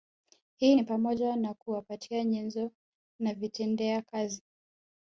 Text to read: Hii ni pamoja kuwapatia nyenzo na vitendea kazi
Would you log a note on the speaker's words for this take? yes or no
yes